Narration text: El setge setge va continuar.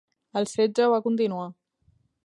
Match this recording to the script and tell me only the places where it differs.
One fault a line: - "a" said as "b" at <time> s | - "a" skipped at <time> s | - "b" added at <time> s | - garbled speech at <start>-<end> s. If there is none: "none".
- "setge" skipped at 0.9 s